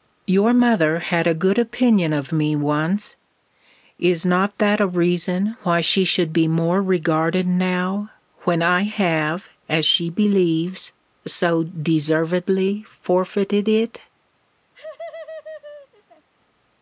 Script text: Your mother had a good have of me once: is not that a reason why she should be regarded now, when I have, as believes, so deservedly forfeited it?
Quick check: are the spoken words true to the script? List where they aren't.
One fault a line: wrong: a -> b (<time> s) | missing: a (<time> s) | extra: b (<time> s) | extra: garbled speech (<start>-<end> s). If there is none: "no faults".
wrong: have -> opinion (1.6 s)
extra: more (6.5 s)
extra: she (9.8 s)